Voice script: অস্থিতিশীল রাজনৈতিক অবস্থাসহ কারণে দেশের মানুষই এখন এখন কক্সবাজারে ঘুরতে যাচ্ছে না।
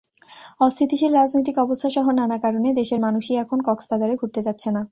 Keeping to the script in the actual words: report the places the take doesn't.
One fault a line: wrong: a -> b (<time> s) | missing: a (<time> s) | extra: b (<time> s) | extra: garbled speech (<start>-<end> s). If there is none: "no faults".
extra: নানা (2.1 s)
missing: এখন (3.6 s)